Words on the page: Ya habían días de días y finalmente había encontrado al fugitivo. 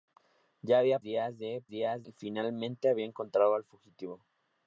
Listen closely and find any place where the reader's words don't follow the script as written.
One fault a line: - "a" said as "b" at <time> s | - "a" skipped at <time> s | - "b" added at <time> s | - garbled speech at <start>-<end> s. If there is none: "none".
none